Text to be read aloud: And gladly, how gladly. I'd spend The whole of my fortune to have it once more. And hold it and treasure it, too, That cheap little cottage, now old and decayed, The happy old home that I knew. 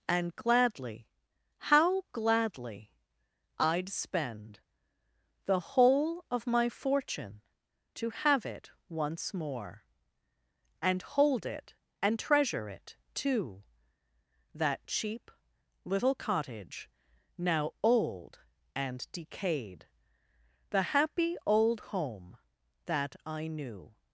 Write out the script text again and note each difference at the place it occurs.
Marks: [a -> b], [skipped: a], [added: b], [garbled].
And gladly, how gladly. I'd spend The whole of my fortune to have it once more. And hold it and treasure it, too, That cheap little cottage, now old and decayed, The happy old home that I knew.